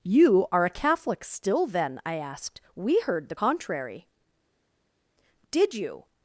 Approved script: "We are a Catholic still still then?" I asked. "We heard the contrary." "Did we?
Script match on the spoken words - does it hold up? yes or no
no